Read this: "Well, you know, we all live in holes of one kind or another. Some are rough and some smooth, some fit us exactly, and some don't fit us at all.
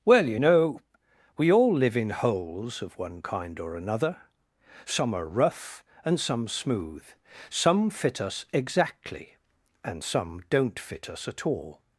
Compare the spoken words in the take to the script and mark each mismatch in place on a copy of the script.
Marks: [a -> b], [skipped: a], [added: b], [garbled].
"Well, you know, we all live in holes of one kind or another. Some are rough and some smooth, some fit us exactly, and some don't fit us at all.